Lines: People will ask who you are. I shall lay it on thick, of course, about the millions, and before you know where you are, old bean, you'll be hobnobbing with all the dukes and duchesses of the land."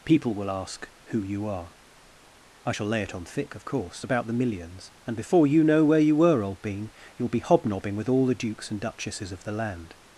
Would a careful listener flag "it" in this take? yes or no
no